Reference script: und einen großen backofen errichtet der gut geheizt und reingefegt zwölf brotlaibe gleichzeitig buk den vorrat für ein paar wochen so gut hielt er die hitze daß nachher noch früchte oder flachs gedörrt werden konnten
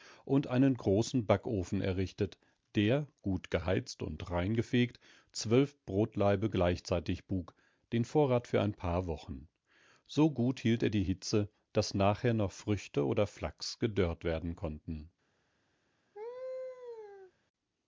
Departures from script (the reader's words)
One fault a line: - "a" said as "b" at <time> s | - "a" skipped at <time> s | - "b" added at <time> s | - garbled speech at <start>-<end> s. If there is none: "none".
none